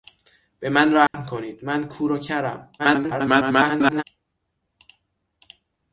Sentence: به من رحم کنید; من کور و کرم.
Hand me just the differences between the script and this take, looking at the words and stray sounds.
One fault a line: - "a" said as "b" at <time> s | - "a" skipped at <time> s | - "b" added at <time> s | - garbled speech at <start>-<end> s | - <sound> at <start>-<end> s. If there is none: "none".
- dropout at 1.1-1.1 s
- garbled speech at 2.8-4.0 s